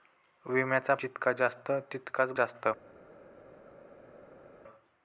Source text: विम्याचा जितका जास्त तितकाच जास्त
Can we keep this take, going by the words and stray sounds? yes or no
yes